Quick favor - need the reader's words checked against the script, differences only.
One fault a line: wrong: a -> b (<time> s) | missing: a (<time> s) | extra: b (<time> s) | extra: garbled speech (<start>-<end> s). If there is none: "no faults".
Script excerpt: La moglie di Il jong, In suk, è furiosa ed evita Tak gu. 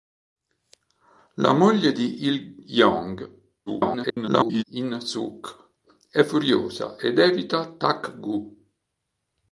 extra: garbled speech (3.7-4.6 s)